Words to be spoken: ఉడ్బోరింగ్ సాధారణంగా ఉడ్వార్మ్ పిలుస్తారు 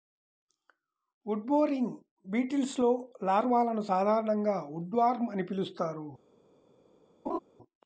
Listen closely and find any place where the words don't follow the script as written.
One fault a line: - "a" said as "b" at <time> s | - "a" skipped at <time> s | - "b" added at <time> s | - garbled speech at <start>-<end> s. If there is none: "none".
- "బీటిల్స్లో లార్వాలను" added at 2.2 s
- "అని" added at 5.3 s